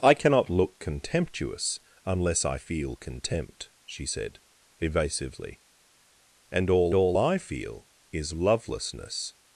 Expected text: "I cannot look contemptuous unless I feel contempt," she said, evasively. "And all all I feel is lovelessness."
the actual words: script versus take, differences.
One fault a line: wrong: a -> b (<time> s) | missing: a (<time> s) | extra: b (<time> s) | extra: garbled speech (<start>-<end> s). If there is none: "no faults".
no faults